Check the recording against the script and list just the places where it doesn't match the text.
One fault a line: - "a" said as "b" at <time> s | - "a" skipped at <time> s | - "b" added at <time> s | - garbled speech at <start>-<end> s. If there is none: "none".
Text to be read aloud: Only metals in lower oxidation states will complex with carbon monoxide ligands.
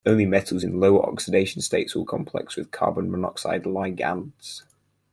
none